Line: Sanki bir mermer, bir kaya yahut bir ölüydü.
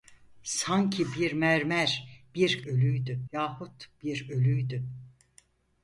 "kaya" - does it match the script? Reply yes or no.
no